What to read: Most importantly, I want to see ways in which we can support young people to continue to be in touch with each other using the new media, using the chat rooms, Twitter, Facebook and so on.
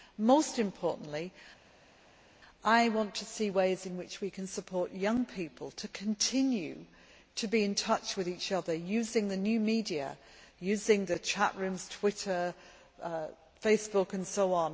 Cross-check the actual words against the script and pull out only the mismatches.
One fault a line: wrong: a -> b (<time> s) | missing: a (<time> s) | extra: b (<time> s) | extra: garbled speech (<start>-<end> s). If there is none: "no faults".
no faults